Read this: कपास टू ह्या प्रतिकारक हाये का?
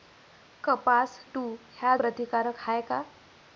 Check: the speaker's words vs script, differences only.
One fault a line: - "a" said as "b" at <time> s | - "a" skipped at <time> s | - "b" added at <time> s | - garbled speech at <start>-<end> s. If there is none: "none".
none